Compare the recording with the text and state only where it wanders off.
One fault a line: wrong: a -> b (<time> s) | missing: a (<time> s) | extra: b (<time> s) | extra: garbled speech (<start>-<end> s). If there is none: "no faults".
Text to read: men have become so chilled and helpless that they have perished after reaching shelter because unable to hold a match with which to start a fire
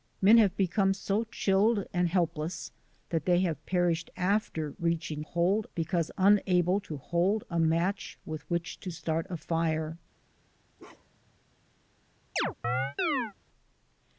wrong: shelter -> hold (5.2 s)